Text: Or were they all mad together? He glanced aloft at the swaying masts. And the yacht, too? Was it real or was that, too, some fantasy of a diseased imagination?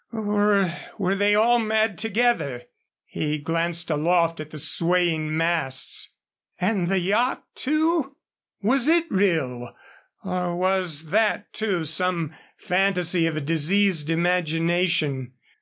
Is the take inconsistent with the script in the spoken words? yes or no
no